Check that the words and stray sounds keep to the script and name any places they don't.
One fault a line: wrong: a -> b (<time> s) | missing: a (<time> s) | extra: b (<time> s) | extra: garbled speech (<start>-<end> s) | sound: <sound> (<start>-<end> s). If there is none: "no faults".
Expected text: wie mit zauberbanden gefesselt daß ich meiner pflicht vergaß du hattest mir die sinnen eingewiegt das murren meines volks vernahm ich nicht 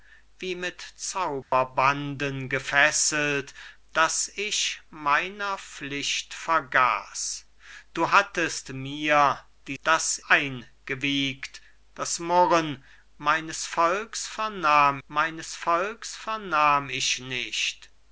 sound: dropout (1.4-1.5 s)
wrong: sinnen -> daß (9.8 s)
extra: meines volks vernahm (15.1 s)